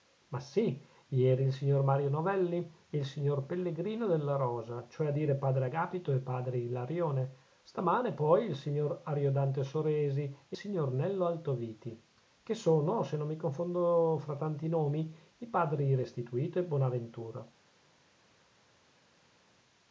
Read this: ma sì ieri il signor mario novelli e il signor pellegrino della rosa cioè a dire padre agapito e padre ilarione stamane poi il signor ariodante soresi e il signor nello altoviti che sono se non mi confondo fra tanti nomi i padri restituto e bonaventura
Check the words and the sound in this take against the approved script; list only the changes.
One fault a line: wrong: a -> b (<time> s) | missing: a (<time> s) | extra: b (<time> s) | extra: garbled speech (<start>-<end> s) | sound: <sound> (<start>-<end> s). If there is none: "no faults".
missing: il (10.6 s)